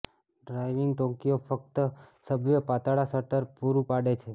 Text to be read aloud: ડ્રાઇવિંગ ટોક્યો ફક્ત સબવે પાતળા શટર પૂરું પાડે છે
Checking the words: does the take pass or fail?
pass